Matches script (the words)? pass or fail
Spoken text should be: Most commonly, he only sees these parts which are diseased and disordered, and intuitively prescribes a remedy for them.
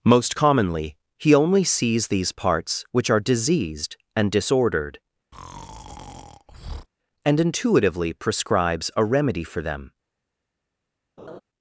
pass